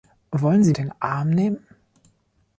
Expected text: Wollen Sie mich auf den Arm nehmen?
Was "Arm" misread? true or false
false